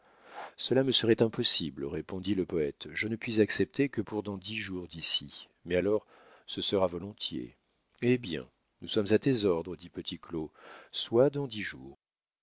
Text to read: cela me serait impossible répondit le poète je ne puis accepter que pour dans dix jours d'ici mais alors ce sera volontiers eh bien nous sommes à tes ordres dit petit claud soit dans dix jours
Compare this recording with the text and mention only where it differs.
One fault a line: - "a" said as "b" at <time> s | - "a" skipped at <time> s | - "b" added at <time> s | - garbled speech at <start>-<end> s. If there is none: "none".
none